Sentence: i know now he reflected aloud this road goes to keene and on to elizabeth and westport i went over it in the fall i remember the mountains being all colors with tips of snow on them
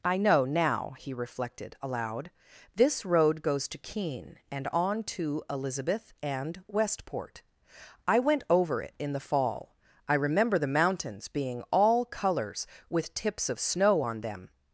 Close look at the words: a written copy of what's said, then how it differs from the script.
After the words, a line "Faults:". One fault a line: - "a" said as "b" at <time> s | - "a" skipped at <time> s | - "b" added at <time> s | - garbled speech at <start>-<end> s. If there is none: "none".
i know now he reflected aloud this road goes to keene and on to elizabeth and westport i went over it in the fall i remember the mountains being all colors with tips of snow on them
Faults:
none